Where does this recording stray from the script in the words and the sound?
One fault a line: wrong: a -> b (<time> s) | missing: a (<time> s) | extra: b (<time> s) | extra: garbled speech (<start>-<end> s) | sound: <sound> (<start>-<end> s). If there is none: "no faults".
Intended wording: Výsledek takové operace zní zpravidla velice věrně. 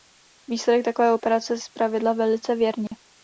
missing: zní (1.6 s)
sound: dropout (2.9-2.9 s)